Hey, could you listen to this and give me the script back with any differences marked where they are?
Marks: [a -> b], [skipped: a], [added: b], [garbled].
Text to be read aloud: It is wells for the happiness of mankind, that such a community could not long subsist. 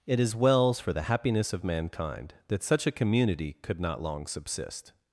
It is wells for the happiness of mankind, that such a community could not long subsist.